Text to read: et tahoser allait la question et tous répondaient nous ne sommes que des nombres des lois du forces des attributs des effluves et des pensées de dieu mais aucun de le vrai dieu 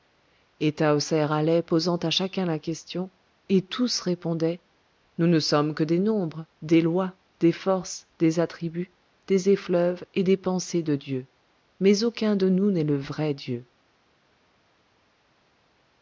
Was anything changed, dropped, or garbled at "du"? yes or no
yes